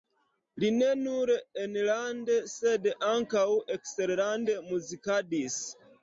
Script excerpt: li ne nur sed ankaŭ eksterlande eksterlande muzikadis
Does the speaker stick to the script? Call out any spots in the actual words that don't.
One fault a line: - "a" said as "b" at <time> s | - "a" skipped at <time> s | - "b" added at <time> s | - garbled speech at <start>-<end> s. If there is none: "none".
- "enlande" added at 1.6 s
- "eksterlande" skipped at 4.6 s